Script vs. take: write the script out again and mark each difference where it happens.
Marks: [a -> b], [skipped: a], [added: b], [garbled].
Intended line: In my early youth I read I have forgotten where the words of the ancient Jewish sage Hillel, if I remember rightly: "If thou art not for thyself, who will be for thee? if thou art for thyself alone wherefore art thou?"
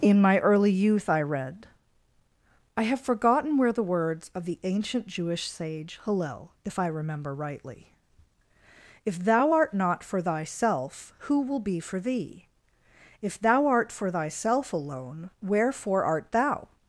In my early youth I read I have forgotten where the words of the ancient Jewish sage Hillel, if I remember rightly: "If thou art not for thyself, who will be for thee? if thou art for thyself alone wherefore art thou?"